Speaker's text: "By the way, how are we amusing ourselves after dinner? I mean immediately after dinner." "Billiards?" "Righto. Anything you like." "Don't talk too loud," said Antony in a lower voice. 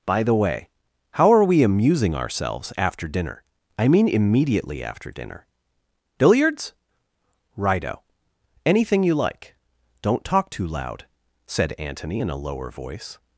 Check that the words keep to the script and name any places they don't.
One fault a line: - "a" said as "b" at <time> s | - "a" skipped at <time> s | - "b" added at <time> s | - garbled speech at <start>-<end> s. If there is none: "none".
none